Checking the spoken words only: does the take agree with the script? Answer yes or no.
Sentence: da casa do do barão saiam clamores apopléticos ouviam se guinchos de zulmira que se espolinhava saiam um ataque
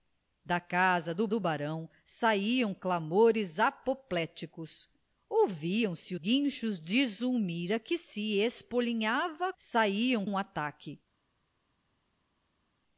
yes